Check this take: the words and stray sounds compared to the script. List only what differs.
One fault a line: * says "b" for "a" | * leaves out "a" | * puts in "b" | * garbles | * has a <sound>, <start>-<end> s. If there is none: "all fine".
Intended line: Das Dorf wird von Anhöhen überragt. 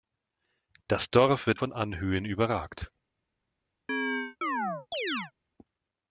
* has a chirp, 3.9-5.3 s